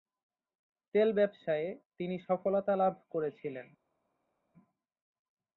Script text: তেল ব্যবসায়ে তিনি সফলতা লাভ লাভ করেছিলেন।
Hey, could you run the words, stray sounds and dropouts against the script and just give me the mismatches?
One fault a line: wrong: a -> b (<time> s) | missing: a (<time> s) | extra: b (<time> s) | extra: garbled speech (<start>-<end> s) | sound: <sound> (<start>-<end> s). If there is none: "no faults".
missing: লাভ (2.9 s)